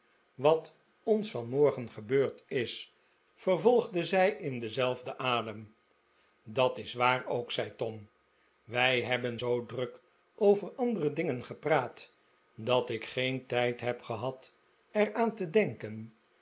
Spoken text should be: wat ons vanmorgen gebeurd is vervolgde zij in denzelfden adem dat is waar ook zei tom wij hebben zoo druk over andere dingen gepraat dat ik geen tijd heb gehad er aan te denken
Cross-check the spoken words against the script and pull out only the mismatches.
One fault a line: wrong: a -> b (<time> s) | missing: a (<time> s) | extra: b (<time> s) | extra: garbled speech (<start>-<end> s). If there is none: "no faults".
no faults